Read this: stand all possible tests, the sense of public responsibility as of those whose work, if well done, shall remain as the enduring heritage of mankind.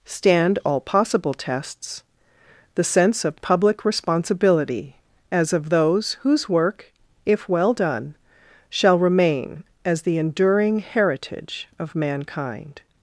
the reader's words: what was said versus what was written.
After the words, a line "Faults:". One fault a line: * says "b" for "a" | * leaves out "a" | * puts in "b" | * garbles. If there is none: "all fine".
stand all possible tests, the sense of public responsibility as of those whose work, if well done, shall remain as the enduring heritage of mankind.
Faults:
all fine